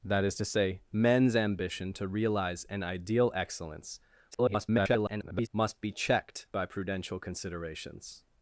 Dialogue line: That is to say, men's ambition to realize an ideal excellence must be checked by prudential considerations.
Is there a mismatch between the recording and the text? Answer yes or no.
yes